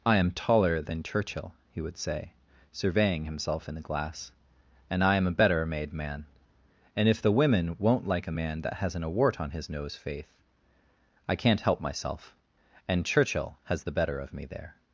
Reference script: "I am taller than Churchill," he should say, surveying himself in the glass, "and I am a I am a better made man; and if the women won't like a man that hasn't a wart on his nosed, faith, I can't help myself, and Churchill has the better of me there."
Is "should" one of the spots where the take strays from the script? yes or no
yes